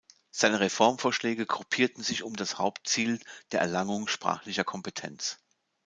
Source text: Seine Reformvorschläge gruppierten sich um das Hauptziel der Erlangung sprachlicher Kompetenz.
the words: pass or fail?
pass